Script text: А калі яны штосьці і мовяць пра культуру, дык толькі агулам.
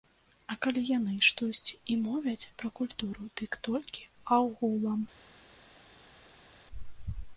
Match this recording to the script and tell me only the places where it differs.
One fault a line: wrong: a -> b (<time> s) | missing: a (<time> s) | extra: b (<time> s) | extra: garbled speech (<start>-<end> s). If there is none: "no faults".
no faults